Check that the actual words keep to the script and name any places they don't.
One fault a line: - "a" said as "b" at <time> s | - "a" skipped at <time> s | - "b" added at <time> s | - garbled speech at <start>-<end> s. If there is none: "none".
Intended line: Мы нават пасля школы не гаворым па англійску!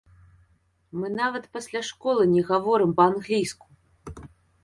none